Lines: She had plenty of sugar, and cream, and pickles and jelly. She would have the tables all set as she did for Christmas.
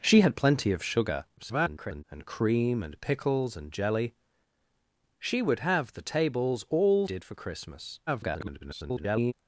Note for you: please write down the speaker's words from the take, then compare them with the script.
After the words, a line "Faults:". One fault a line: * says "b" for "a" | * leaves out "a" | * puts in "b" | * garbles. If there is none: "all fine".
She had plenty of sugar, [garbled] and cream, and pickles and jelly. She would have the tables all did for Christmas. [garbled]
Faults:
* garbles
* leaves out "set as she"
* garbles